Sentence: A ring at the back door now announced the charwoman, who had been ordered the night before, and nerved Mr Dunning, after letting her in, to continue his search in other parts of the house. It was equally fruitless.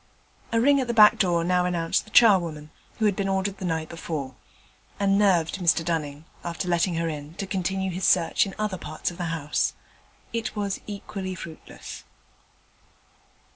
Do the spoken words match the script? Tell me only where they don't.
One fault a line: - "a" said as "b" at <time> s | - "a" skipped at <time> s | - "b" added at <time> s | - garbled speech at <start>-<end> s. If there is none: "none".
none